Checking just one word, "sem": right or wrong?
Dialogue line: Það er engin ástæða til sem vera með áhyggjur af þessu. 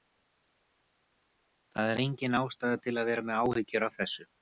wrong